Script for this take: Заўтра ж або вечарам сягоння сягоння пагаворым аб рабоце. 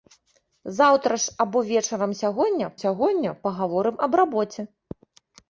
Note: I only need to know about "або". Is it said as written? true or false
true